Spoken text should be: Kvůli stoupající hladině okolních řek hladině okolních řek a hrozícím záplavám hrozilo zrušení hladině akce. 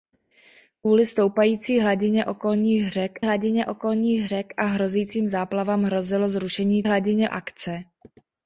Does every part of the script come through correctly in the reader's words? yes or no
yes